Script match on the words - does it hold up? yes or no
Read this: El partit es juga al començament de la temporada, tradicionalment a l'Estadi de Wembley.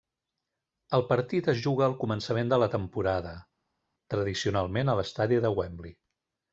yes